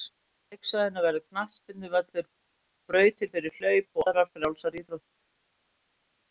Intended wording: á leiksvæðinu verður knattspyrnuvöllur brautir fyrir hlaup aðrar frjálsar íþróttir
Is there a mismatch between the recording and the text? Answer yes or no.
no